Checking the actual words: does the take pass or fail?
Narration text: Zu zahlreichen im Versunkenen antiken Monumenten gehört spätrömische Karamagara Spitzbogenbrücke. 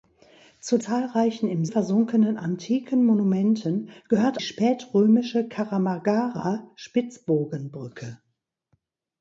pass